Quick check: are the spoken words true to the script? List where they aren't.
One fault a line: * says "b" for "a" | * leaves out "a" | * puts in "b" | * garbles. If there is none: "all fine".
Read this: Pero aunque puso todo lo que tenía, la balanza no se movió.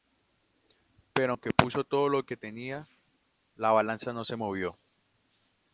all fine